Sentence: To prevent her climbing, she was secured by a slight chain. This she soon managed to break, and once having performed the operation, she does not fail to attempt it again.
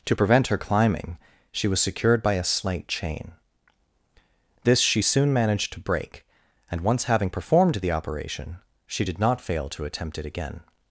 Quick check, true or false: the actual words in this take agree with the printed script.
false